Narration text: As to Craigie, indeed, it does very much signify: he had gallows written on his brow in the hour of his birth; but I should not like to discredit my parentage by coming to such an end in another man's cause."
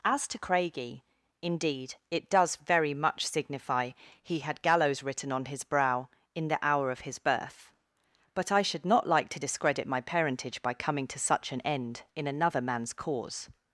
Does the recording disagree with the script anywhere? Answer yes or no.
no